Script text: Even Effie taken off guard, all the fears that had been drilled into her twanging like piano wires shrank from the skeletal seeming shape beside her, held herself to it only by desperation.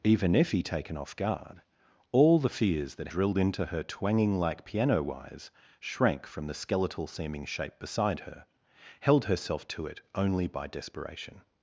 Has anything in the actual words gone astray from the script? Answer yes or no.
yes